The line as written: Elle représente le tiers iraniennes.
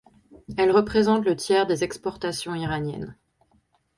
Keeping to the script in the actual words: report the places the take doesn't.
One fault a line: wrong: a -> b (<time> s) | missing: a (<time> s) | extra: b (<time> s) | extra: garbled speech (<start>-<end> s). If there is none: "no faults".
extra: des exportations (1.7 s)